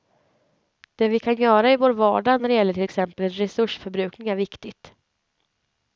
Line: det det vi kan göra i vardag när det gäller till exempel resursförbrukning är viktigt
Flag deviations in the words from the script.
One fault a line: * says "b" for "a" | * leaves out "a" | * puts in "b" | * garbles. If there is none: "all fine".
* leaves out "det"
* puts in "vår"